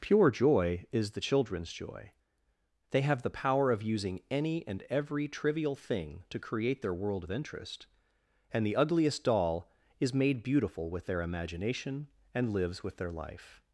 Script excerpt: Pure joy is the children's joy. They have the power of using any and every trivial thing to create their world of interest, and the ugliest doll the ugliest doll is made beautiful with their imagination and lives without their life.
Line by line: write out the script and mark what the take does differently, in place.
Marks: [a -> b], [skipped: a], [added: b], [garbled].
Pure joy is the children's joy. They have the power of using any and every trivial thing to create their world of interest, and the ugliest doll [skipped: the ugliest doll] is made beautiful with their imagination and lives [without -> with] their life.